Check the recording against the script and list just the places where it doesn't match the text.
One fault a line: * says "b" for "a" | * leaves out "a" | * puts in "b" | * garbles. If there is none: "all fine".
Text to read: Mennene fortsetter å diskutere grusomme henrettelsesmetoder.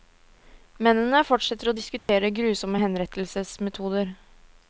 all fine